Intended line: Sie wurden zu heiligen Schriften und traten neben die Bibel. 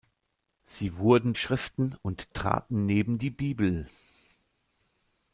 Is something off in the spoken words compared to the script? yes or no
yes